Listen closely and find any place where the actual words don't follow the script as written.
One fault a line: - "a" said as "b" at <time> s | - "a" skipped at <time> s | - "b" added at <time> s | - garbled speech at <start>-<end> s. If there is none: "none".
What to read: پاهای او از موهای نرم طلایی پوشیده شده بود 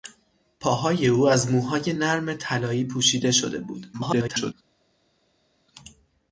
- garbled speech at 3.9-4.5 s